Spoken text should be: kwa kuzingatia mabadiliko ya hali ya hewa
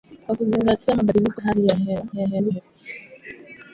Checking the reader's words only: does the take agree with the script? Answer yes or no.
no